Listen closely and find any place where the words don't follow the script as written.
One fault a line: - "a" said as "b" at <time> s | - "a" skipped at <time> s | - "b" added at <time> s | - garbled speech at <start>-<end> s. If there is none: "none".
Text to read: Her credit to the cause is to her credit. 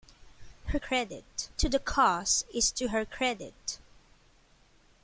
none